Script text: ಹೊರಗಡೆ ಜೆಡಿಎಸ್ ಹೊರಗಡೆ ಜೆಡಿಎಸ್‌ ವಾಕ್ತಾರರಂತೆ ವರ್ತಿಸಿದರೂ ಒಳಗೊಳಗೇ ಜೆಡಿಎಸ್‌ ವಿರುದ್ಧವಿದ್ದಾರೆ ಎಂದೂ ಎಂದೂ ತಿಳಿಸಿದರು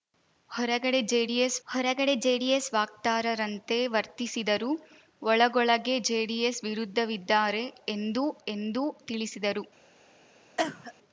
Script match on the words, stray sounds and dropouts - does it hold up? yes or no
no